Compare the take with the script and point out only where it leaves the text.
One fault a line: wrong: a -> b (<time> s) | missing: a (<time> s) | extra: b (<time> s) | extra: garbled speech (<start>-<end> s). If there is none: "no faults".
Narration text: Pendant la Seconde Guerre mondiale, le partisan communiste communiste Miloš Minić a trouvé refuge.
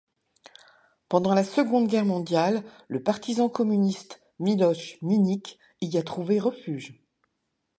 missing: communiste (4.2 s)
extra: y (5.8 s)